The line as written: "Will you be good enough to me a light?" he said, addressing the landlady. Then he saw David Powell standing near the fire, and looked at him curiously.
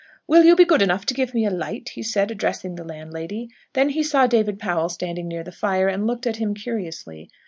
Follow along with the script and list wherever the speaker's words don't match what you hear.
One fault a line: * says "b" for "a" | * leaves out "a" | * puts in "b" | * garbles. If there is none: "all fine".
* puts in "give"